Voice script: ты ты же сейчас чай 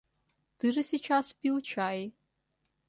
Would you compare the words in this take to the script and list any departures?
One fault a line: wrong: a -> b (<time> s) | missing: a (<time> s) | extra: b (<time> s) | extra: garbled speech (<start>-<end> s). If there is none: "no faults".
missing: ты (0.7 s)
extra: пил (1.3 s)